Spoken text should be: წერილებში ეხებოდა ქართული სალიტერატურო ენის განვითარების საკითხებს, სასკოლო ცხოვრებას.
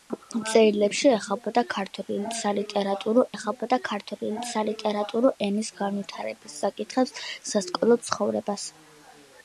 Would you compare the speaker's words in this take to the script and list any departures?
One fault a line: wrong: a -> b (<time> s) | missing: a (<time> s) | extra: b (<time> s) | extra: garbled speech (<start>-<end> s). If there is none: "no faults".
extra: ეხებოდა ქართული სალიტერატურო (3.3 s)